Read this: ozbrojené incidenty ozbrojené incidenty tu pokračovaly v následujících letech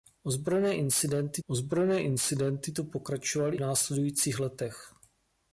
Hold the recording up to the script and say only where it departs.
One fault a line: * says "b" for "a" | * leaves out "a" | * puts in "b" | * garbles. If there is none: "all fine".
all fine